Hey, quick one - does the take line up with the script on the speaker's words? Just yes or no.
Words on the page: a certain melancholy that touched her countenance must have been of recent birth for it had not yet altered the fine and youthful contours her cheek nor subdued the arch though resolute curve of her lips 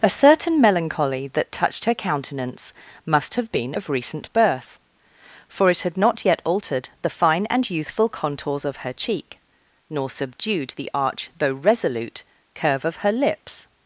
no